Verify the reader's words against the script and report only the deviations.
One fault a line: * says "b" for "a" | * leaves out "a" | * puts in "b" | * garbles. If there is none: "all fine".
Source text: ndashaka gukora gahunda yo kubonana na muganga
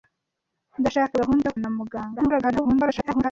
* leaves out "gukora"
* leaves out "kubonana"
* garbles